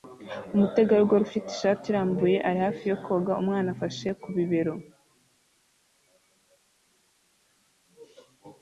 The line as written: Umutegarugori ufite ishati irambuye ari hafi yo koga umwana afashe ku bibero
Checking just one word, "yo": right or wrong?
right